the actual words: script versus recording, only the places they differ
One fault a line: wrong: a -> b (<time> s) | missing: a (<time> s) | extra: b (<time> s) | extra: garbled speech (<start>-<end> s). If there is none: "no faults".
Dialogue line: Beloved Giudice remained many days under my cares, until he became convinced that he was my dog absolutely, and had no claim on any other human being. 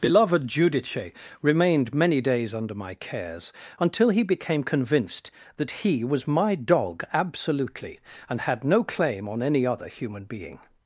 no faults